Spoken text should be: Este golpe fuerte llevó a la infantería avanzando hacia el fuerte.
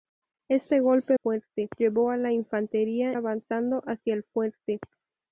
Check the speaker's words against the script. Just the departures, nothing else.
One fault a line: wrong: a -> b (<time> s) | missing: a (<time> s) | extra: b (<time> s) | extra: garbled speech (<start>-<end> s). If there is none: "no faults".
no faults